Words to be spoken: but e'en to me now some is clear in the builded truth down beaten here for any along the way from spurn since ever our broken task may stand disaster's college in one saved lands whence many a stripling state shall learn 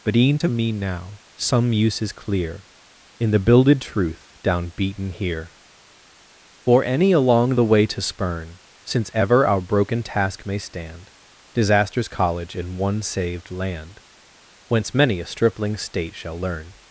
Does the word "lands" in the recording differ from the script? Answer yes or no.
yes